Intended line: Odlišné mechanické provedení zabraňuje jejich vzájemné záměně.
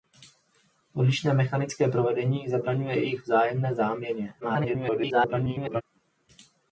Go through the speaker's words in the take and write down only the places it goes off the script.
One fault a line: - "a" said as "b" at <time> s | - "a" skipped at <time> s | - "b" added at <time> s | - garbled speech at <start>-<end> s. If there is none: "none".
- garbled speech at 4.4-5.8 s